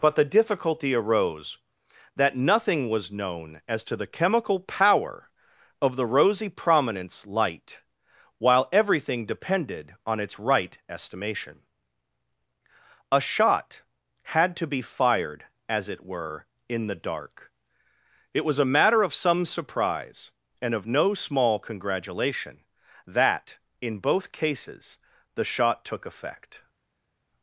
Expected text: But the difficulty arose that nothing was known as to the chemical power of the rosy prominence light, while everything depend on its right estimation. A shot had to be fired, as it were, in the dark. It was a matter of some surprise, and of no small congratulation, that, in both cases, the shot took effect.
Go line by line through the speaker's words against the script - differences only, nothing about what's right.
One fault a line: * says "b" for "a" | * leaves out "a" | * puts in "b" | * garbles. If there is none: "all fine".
* says "depended" for "depend"